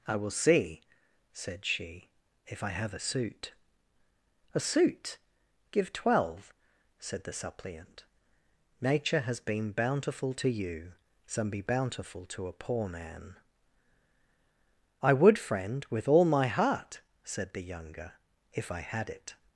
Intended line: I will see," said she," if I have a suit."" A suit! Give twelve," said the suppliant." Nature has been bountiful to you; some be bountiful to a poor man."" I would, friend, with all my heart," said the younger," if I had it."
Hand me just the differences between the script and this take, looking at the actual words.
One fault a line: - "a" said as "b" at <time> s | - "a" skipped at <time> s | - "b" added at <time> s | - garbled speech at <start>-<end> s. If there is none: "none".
none